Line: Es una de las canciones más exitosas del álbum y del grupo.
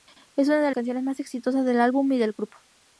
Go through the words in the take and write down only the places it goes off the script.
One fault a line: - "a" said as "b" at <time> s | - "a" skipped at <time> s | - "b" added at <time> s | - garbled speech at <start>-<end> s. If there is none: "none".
- "las" skipped at 0.7 s